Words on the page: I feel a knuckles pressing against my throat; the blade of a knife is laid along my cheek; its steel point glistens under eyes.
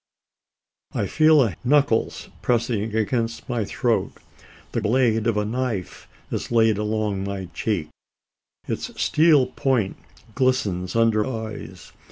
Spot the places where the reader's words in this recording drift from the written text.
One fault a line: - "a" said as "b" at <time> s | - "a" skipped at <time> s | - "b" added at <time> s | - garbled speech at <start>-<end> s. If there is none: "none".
none